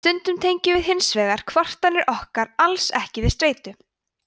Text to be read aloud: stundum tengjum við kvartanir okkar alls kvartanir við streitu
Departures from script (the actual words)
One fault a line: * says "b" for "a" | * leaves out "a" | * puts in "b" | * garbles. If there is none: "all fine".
* puts in "hins vegar"
* says "ekki" for "kvartanir"